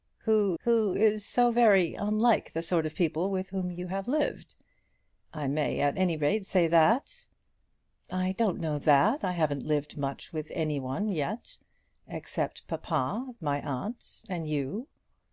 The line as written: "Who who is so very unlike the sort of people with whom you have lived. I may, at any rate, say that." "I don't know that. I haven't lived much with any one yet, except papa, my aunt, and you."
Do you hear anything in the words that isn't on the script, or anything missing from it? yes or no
no